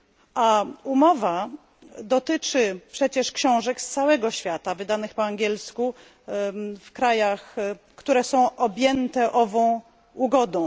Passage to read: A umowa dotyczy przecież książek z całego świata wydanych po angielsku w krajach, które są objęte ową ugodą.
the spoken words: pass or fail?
pass